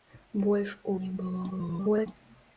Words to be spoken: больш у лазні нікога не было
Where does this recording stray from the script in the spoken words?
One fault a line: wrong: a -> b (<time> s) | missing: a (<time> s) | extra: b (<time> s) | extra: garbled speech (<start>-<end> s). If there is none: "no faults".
missing: лазні нікога (0.9 s)
extra: garbled speech (1.5-2.1 s)